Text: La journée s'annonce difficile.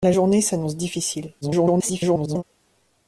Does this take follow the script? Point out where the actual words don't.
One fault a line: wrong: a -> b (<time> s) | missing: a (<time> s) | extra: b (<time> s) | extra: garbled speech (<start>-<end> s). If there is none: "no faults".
extra: garbled speech (1.4-2.4 s)